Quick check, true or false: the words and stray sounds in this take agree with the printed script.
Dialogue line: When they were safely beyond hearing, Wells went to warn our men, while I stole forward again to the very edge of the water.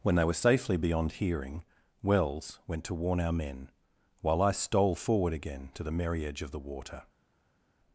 false